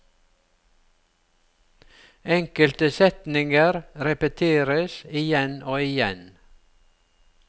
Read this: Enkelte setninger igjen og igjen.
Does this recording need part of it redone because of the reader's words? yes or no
yes